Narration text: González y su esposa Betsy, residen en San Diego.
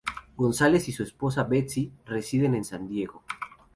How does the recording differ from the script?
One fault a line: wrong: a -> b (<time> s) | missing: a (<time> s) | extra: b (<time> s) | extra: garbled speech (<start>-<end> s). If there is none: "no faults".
no faults